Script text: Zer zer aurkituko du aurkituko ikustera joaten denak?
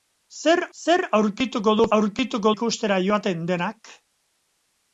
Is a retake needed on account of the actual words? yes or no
no